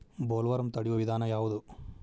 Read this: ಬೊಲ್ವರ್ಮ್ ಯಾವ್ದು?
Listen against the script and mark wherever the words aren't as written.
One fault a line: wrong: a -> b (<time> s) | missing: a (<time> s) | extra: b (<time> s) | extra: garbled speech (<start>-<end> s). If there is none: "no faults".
extra: ತಡಿಯು ವಿಧಾನ (0.7 s)